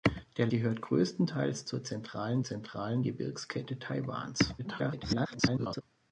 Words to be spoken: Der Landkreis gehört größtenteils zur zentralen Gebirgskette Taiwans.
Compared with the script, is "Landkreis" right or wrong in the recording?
wrong